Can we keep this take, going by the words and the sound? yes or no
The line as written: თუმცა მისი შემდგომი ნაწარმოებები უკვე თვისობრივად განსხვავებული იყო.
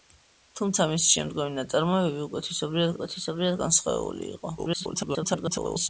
no